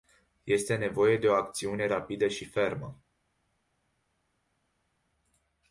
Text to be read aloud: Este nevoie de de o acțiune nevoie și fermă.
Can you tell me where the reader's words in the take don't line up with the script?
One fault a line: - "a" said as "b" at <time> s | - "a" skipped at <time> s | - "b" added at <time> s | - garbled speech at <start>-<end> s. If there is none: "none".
- "de" skipped at 1.3 s
- "nevoie" said as "rapidă" at 1.9 s